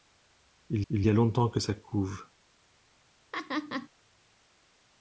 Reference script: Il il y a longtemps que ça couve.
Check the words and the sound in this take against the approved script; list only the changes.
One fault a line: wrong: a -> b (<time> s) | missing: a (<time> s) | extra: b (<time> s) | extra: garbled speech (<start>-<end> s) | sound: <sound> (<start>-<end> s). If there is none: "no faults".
sound: laugh (3.3-3.9 s)